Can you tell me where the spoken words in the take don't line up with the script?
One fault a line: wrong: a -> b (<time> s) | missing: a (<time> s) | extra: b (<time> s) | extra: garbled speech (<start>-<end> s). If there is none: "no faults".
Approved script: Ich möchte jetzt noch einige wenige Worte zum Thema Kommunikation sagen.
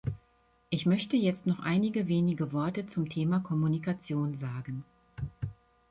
no faults